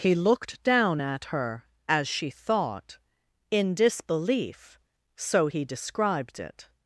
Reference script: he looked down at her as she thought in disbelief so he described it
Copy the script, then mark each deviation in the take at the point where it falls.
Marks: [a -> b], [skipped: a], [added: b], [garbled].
he looked down at her as she thought in disbelief so he described it